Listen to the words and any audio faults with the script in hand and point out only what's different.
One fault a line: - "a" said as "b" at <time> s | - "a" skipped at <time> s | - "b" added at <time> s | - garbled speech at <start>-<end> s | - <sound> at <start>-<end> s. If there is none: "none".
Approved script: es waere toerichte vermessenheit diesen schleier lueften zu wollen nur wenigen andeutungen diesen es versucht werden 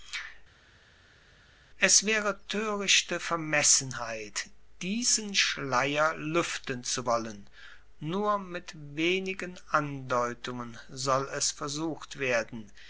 - "mit" added at 8.4 s
- "diesen" said as "soll" at 10.9 s